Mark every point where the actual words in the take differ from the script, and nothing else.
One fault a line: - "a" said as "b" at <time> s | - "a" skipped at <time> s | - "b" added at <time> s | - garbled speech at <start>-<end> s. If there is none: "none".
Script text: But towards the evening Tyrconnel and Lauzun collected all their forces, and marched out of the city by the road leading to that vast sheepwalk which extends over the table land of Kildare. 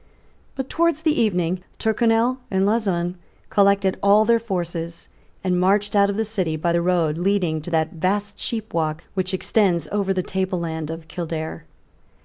none